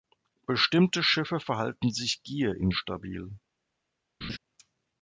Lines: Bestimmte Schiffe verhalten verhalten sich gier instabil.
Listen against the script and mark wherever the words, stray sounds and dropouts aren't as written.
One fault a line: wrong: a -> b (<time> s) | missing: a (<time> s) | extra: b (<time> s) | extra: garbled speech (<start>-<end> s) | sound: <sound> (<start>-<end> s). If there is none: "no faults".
missing: verhalten (1.9 s)
sound: laugh (4.2-4.4 s)